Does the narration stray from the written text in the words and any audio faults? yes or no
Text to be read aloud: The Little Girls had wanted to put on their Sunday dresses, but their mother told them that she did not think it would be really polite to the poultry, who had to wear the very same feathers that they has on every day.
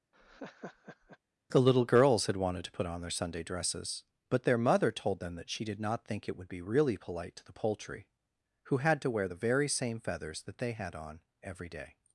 yes